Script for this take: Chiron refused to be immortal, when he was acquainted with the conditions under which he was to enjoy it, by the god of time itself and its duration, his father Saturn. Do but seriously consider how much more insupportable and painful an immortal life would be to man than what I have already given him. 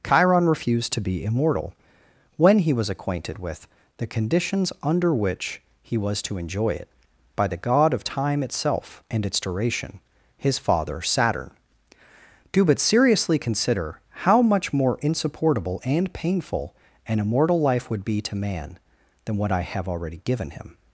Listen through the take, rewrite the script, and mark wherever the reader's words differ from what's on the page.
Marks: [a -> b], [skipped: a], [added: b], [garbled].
Chiron refused to be immortal, when he was acquainted with the conditions under which he was to enjoy it, by the god of time itself and its duration, his father Saturn. Do but seriously consider how much more insupportable and painful an immortal life would be to man than what I have already given him.